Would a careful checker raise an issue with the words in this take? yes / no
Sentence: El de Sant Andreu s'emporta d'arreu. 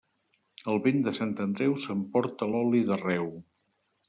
yes